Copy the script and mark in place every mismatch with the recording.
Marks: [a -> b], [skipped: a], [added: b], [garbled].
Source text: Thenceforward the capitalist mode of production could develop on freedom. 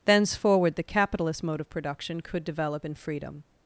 Thenceforward the capitalist mode of production could develop [on -> in] freedom.